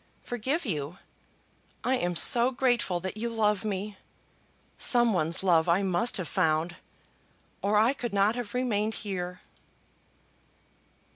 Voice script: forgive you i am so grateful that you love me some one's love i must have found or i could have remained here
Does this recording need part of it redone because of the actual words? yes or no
yes